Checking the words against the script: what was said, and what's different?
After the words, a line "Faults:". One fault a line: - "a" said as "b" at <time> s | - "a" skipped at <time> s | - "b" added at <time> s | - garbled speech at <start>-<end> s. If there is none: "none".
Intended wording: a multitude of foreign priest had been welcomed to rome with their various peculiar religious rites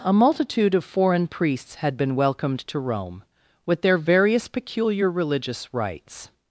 a multitude of foreign priests had been welcomed to rome with their various peculiar religious rites
Faults:
- "priest" said as "priests" at 1.3 s